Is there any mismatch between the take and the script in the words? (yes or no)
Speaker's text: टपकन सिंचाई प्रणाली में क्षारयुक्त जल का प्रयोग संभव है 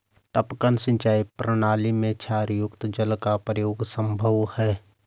no